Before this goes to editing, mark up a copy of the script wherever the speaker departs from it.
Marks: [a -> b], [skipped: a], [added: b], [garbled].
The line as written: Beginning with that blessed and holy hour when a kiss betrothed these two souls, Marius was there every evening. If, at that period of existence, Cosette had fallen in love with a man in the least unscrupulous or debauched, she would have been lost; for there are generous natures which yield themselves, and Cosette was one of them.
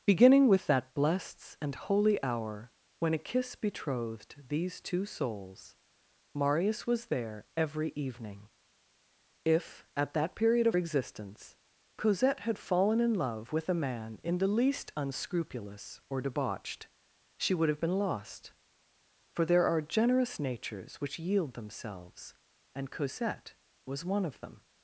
Beginning with that blessed and holy hour when a kiss betrothed these two souls, Marius was there every evening. If, at that period of existence, Cosette had fallen in love with a man in the least unscrupulous or debauched, she would have been lost; for there are generous natures which yield themselves, and Cosette was one of them.